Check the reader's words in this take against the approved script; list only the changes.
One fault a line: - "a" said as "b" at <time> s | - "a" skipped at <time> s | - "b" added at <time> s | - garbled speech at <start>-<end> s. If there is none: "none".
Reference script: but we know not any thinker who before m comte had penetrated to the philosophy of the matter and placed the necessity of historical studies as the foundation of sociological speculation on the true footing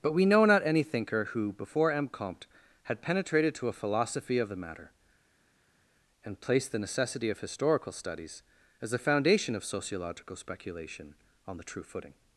- "the" said as "a" at 3.7 s